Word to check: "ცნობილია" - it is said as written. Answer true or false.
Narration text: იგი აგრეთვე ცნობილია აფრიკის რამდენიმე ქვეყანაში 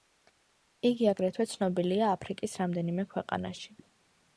true